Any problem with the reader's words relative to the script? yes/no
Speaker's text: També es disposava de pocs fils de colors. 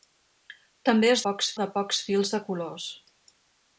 yes